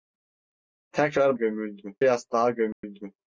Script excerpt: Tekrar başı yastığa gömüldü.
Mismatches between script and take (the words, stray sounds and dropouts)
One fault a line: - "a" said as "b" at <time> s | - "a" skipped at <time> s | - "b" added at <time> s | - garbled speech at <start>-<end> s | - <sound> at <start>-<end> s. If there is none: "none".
- "başı" said as "gömüldü" at 1.3 s
- dropout at 2.7-2.8 s